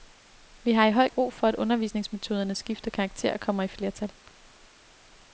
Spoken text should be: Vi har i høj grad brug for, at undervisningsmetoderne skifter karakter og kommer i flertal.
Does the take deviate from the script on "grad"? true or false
true